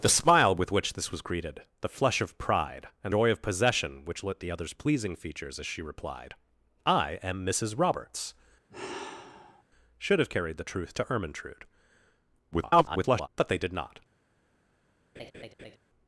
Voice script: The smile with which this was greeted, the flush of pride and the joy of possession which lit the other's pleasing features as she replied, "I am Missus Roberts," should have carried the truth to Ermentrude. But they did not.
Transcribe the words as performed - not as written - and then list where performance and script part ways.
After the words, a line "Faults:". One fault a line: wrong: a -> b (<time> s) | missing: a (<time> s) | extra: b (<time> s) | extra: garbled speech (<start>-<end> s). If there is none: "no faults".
The smile with which this was greeted, the flush of pride and joy of possession which lit the other's pleasing features as she replied, "I am Missus Roberts," should have carried the truth to Ermentrude. [garbled] But they did not.
Faults:
missing: the (3.1 s)
extra: garbled speech (12.5-13.3 s)